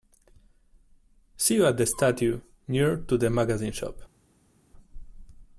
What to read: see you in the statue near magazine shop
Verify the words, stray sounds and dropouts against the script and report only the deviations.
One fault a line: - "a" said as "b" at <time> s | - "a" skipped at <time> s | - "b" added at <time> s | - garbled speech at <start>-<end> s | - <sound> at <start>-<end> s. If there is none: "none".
- "in" said as "at" at 1.7 s
- "to the" added at 3.0 s